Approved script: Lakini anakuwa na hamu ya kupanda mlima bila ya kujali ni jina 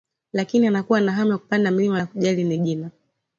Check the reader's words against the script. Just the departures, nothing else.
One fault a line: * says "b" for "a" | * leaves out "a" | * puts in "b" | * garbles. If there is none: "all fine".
* leaves out "bila"